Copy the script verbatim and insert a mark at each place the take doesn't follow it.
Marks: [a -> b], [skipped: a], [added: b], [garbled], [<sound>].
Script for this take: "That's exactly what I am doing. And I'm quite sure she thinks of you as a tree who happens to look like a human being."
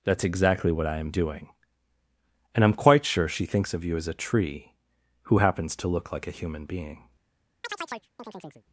"That's exactly what I am doing. And I'm quite sure she thinks of you as a tree who happens to look like a human being." [chirp]